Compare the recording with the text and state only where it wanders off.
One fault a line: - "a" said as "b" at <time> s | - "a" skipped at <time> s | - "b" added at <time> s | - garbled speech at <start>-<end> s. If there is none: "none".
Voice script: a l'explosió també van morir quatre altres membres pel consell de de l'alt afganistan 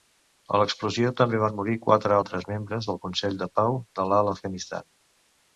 - "pel" said as "del" at 2.9 s
- "pau" added at 3.6 s